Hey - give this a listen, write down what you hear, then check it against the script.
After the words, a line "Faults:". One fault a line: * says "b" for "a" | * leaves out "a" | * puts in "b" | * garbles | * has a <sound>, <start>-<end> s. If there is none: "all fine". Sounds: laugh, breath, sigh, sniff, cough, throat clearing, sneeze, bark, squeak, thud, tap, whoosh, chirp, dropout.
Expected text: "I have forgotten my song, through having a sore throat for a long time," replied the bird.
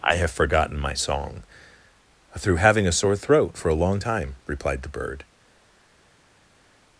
"I have forgotten my song, through having a sore throat for a long time," replied the bird.
Faults:
all fine